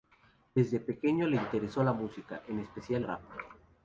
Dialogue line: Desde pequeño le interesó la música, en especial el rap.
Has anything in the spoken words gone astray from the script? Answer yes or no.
yes